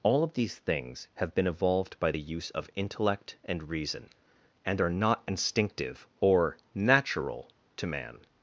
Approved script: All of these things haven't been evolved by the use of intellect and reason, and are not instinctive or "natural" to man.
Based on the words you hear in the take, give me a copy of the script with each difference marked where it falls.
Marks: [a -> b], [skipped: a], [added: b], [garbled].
All of these things [haven't -> have] been evolved by the use of intellect and reason, and are not instinctive or "natural" to man.